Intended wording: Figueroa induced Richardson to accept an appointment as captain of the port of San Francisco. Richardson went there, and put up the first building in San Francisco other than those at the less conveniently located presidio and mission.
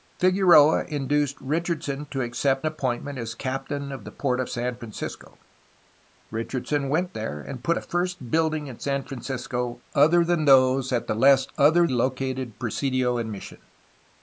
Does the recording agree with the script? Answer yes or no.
no